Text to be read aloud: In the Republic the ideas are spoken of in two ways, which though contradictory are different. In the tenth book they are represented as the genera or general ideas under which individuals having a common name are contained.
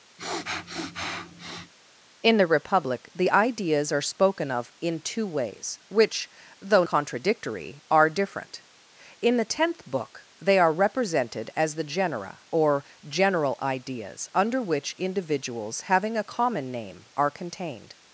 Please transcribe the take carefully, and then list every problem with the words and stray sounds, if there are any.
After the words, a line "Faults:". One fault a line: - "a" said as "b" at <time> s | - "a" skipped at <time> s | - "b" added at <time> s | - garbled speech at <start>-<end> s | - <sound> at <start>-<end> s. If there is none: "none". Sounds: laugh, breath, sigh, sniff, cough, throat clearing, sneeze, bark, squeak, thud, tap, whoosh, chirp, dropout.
In the Republic the ideas are spoken of in two ways, which though contradictory are different. In the tenth book they are represented as the genera or general ideas under which individuals having a common name are contained.
Faults:
- sniff at 0.2-1.7 s